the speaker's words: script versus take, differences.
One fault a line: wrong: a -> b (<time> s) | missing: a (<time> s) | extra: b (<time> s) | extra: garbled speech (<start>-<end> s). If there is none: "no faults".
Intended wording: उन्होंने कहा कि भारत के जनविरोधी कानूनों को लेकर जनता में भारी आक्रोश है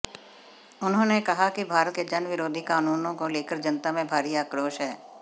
no faults